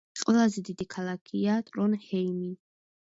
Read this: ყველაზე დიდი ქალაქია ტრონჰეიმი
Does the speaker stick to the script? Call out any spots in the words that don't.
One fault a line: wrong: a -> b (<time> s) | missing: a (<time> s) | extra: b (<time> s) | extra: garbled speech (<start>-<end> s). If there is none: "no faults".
no faults